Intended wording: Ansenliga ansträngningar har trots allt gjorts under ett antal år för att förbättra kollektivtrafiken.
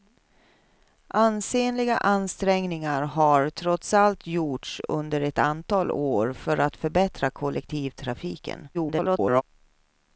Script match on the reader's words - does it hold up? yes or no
no